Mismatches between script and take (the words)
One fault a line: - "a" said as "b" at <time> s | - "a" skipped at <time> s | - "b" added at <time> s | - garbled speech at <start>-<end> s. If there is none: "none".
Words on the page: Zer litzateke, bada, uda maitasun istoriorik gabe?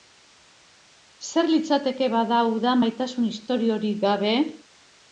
none